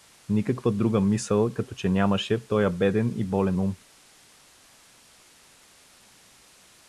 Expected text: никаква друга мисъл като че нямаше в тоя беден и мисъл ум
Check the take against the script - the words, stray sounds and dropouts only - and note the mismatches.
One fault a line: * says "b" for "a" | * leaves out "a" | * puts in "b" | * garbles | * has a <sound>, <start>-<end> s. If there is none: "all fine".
* says "болен" for "мисъл"